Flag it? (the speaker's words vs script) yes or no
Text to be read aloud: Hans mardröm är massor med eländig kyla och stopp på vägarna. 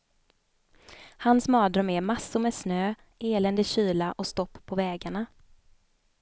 yes